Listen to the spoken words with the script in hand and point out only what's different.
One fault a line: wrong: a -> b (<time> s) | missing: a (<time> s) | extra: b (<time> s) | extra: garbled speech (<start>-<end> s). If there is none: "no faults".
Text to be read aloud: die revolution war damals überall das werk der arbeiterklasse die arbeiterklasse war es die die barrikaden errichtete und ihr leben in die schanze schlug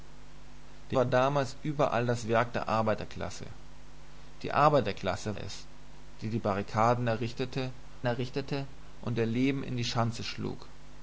missing: revolution (1.0 s)
missing: war (5.4 s)
extra: errichtete (8.1 s)